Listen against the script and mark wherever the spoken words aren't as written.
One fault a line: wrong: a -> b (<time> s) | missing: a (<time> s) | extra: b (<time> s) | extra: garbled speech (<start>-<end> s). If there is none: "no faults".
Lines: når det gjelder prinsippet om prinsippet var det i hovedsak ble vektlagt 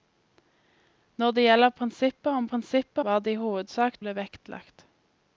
no faults